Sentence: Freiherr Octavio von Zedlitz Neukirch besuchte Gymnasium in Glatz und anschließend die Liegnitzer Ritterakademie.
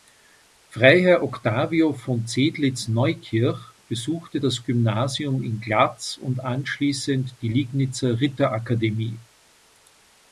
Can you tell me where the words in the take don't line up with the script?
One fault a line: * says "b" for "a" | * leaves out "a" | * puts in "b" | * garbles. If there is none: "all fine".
* puts in "das"